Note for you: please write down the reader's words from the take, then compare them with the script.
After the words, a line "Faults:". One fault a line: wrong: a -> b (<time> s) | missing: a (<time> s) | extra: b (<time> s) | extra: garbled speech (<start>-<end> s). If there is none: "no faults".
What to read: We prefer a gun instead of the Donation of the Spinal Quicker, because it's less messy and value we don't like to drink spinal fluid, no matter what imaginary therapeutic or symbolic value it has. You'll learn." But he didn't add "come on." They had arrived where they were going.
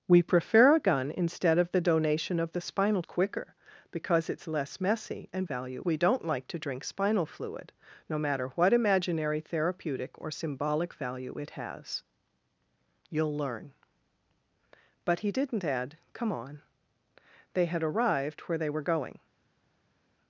We prefer a gun instead of the Donation of the Spinal Quicker, because it's less messy and value we don't like to drink spinal fluid, no matter what imaginary therapeutic or symbolic value it has. You'll learn." But he didn't add "come on." They had arrived where they were going.
Faults:
no faults